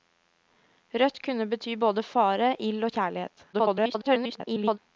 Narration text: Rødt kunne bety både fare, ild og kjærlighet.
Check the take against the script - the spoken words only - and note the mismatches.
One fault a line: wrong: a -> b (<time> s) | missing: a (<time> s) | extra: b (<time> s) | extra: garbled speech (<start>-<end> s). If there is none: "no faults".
extra: garbled speech (3.5-4.8 s)